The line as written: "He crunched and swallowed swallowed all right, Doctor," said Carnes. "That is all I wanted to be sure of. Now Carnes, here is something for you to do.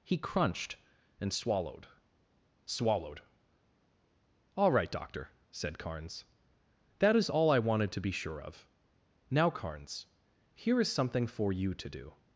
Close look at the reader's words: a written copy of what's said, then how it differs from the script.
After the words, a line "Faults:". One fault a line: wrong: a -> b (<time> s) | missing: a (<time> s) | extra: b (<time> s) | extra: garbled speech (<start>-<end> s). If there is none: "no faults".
"He crunched and swallowed swallowed all right, Doctor," said Carnes. "That is all I wanted to be sure of. Now Carnes, here is something for you to do.
Faults:
no faults